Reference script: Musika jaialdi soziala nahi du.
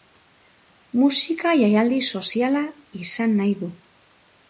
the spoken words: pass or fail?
fail